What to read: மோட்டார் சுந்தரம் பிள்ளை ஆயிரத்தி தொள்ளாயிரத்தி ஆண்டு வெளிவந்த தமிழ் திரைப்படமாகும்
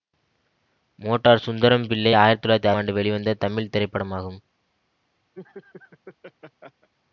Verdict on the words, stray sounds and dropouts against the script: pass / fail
fail